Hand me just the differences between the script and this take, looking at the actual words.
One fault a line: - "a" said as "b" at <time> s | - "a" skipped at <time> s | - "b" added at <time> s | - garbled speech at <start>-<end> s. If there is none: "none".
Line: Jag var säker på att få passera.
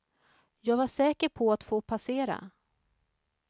none